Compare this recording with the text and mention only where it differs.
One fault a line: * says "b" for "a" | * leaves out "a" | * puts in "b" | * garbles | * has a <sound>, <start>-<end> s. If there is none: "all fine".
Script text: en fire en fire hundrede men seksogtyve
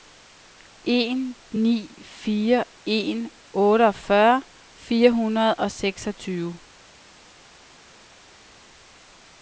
* puts in "ni"
* puts in "otteogfyrre"
* says "og" for "men"